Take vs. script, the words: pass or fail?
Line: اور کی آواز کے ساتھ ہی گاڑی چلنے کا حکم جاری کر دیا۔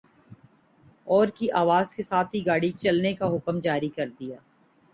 pass